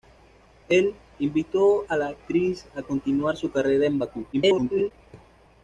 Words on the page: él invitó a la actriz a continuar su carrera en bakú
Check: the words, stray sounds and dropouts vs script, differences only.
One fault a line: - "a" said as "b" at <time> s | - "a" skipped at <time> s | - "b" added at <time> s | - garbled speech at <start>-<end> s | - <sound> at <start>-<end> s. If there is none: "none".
- garbled speech at 4.3-4.9 s